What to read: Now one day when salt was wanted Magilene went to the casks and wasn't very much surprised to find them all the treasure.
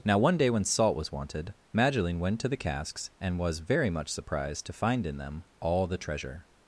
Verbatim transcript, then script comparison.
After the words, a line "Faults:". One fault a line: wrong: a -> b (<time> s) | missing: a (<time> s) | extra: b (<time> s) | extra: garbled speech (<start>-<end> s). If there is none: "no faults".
Now one day when salt was wanted Magilene went to the casks and was very much surprised to find in them all the treasure.
Faults:
wrong: wasn't -> was (3.4 s)
extra: in (5.0 s)